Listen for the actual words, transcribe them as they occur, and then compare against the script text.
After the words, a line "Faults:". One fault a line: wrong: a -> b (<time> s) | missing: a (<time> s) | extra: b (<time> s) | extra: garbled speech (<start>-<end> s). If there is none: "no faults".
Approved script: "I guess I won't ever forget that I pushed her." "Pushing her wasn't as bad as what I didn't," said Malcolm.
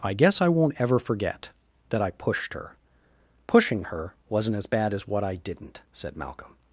"I guess I won't ever forget that I pushed her." "Pushing her wasn't as bad as what I didn't," said Malcolm.
Faults:
no faults